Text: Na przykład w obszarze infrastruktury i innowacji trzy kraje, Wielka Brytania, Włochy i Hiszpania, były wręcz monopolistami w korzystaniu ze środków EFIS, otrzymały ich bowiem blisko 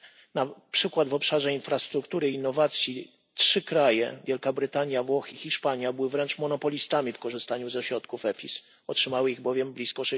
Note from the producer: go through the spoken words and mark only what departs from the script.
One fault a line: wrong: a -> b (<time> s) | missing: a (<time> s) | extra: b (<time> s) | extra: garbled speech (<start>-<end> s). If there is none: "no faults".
no faults